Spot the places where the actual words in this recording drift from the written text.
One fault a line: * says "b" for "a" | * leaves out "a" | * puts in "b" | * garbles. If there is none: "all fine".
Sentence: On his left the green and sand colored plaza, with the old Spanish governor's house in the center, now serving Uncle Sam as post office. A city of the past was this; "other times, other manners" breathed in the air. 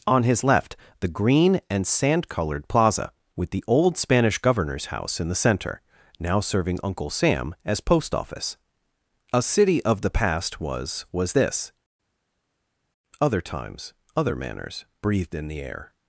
* puts in "was"